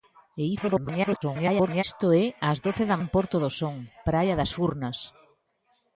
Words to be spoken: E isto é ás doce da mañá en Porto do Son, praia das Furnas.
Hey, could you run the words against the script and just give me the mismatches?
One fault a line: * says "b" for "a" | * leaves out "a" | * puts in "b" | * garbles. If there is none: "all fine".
* garbles
* leaves out "mañá"